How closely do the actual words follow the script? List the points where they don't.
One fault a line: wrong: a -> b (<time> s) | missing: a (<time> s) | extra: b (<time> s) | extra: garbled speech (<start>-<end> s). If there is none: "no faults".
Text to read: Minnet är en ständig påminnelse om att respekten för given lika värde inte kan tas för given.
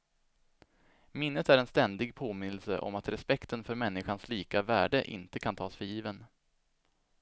wrong: given -> människans (3.8 s)